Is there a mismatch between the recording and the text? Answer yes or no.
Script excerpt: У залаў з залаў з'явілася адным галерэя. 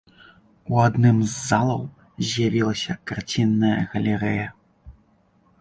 yes